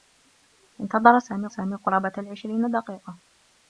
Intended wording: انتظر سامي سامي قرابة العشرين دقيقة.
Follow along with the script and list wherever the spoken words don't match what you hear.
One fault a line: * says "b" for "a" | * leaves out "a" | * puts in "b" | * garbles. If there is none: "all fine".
all fine